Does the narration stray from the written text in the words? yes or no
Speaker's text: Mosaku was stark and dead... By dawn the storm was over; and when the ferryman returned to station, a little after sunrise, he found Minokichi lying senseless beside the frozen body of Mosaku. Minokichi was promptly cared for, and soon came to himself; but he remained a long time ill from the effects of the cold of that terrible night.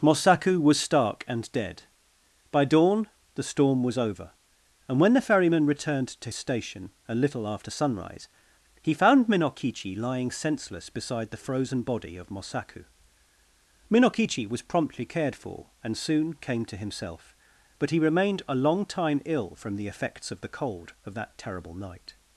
no